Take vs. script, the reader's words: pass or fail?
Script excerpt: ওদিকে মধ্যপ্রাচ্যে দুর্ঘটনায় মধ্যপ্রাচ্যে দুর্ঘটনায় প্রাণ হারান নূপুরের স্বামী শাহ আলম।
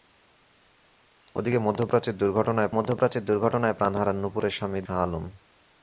pass